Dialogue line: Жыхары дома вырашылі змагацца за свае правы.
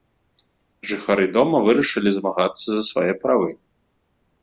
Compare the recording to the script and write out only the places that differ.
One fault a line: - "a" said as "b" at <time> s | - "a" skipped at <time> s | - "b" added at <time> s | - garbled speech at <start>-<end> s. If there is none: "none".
none